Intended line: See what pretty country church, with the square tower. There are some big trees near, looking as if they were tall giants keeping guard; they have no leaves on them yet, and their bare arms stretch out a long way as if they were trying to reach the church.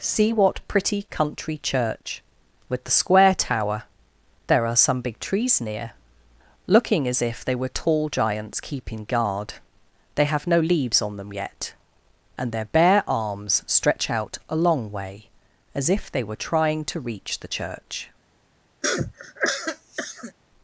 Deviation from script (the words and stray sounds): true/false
true